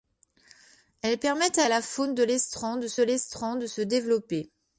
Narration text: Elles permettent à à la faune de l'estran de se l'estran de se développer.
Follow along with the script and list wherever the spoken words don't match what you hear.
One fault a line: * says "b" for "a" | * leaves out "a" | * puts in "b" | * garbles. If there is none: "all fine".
all fine